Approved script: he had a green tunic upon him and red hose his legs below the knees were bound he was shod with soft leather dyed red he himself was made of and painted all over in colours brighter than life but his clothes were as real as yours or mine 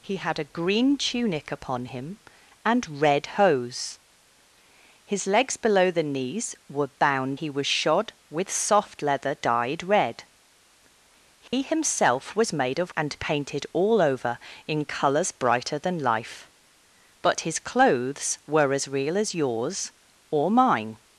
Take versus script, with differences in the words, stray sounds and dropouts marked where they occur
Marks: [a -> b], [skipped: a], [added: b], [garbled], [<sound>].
he had a green tunic upon him and red hose his legs below the knees were bound he was shod with soft leather dyed red he [dropout] himself was made of and painted all over in colours brighter than life but his clothes were as real as yours or mine